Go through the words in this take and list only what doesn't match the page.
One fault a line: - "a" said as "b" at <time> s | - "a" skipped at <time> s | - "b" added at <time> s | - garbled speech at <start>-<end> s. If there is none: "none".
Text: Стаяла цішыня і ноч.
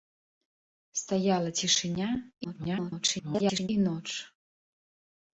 - garbled speech at 2.4-3.7 s